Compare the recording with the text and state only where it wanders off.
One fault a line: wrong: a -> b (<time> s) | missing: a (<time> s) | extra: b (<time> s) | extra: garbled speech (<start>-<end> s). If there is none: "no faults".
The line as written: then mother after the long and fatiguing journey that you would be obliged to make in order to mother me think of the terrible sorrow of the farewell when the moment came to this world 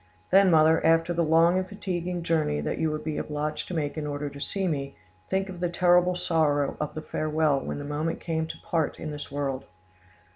wrong: mother -> see (4.4 s)
extra: part in (8.6 s)